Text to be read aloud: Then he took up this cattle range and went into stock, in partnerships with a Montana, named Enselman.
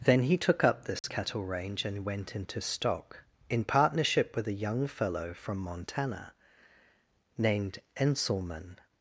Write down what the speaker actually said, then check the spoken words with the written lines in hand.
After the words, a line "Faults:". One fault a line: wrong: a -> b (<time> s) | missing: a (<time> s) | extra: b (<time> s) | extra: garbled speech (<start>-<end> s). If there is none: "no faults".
Then he took up this cattle range and went into stock, in partnership with a young fellow from Montana, named Enselman.
Faults:
wrong: partnerships -> partnership (3.6 s)
extra: young fellow from (4.5 s)